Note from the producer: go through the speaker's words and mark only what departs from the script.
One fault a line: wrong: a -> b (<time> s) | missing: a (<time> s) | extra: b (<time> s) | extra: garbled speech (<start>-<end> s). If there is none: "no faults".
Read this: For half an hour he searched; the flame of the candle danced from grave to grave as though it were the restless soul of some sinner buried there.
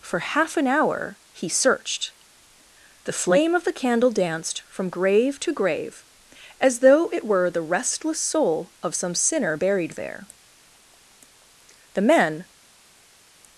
extra: The men (11.9 s)